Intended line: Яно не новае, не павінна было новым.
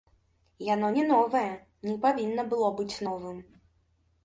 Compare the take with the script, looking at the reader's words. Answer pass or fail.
fail